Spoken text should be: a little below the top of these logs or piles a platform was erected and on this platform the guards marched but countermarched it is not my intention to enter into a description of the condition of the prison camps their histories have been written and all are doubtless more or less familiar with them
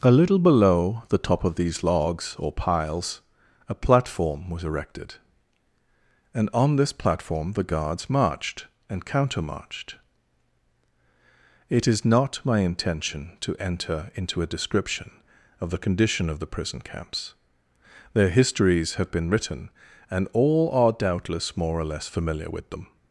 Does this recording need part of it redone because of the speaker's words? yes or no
yes